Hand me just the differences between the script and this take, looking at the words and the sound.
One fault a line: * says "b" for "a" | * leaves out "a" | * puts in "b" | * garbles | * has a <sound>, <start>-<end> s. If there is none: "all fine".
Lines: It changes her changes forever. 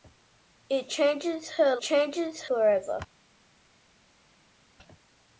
all fine